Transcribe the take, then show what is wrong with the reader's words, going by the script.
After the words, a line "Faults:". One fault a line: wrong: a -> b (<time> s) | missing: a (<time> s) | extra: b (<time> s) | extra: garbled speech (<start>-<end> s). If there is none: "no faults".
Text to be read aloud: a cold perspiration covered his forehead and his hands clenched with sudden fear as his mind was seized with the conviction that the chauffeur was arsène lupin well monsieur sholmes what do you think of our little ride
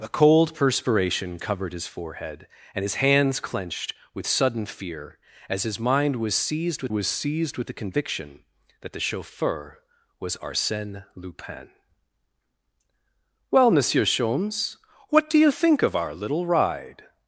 a cold perspiration covered his forehead and his hands clenched with sudden fear as his mind was seized with was seized with the conviction that the chauffeur was arsène lupin well monsieur sholmes what do you think of our little ride
Faults:
extra: was seized with (6.9 s)